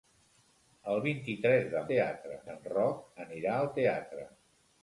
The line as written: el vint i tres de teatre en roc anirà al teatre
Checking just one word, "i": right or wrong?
right